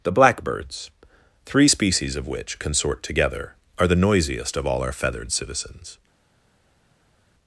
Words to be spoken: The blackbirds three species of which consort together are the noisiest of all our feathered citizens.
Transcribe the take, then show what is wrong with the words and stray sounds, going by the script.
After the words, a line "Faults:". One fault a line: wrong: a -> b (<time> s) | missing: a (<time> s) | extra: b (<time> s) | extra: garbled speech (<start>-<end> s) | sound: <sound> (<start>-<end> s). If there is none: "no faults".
The blackbirds three species of which consort together are the noisiest of all our feathered citizens.
Faults:
no faults